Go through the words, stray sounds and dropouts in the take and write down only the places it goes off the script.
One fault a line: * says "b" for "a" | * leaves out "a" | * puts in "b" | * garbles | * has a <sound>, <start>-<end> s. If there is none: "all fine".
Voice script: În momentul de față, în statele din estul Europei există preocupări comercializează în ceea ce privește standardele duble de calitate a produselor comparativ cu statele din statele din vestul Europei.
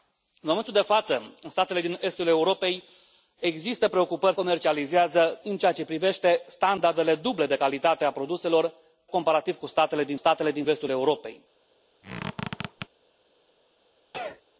* has a squeak, 12.0-12.9 s
* has a sneeze, 14.1-14.4 s